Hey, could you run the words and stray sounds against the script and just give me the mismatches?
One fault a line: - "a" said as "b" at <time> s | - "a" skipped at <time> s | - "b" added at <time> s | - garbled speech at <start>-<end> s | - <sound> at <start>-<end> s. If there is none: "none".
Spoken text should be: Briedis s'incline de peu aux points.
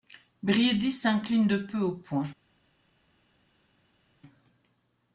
none